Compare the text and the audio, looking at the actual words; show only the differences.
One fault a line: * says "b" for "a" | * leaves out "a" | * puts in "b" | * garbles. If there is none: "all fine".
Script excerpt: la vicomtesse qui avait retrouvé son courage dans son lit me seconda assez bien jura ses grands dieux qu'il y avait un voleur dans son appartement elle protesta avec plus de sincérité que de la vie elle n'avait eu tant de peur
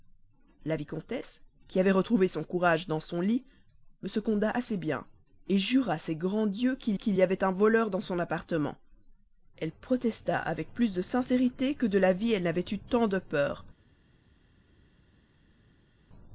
* puts in "qu'il"